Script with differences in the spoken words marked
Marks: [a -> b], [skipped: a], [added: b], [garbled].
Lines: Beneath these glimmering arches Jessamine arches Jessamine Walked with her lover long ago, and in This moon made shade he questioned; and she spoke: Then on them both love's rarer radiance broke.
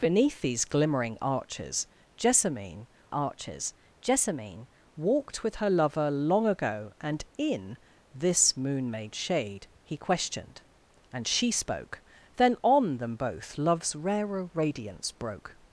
Beneath these glimmering arches Jessamine arches Jessamine Walked with her lover long ago, and in This moon made shade he questioned; and she spoke: Then on them both love's rarer radiance broke.